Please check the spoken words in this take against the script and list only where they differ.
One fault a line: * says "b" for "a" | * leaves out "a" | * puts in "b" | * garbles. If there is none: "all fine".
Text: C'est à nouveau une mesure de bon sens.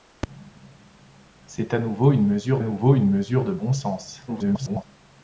* puts in "nouveau une mesure"
* garbles